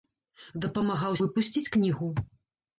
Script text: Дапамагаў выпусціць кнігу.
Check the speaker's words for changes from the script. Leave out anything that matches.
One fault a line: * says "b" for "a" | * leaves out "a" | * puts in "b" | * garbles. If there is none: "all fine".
all fine